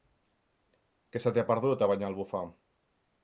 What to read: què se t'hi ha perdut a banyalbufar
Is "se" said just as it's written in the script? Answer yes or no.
yes